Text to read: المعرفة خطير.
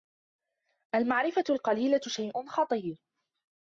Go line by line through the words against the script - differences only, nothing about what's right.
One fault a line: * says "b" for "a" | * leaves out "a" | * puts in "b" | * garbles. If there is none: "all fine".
* puts in "القليلة شيء"